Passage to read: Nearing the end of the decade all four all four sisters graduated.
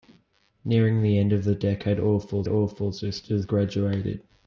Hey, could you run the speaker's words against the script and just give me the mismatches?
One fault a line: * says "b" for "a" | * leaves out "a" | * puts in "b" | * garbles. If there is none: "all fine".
all fine